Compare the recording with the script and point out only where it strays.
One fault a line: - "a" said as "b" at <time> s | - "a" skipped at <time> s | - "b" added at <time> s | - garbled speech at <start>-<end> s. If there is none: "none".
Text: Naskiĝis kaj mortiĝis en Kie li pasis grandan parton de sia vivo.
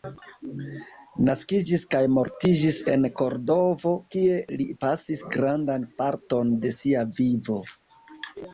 - "Kordovo" added at 3.2 s